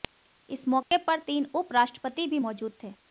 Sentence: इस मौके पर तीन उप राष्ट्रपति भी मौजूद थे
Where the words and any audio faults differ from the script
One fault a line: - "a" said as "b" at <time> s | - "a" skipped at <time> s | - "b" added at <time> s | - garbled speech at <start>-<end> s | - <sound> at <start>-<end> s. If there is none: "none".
- dropout at 0.8-0.9 s